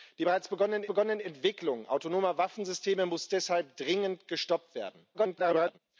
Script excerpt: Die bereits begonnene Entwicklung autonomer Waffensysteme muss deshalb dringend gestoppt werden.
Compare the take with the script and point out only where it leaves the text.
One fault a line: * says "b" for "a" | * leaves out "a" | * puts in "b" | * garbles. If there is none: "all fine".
* puts in "begonnene"
* garbles